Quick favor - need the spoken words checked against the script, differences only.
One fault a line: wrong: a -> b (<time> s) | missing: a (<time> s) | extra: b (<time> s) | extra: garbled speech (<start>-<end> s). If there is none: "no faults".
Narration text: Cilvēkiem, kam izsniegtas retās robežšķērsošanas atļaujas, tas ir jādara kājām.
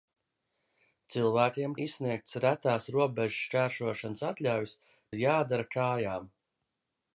missing: kam (1.8 s)
missing: tas (4.8 s)